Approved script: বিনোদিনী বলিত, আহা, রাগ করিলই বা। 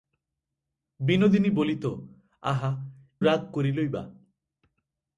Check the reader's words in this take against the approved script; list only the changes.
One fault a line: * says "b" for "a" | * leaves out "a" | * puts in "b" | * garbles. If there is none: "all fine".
all fine